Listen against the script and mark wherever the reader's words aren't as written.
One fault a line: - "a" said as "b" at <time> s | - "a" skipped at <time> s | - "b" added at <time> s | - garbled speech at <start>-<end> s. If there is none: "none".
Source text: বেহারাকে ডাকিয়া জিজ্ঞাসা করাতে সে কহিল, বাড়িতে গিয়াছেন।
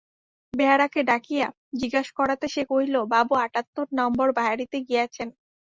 - "বাবু আটাত্তর নম্বর" added at 3.1 s